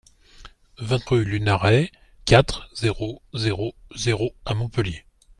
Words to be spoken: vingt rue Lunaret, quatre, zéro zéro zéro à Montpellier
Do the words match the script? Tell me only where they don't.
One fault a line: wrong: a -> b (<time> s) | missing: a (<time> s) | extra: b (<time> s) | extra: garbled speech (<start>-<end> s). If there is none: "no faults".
no faults